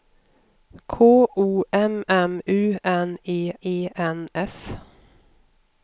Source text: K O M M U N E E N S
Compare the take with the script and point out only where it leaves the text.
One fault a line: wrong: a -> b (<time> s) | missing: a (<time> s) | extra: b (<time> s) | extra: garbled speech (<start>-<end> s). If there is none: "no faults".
no faults